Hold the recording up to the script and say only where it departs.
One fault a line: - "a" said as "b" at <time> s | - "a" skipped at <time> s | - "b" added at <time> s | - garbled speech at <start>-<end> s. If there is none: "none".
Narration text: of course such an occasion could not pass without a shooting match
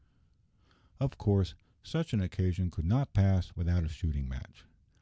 none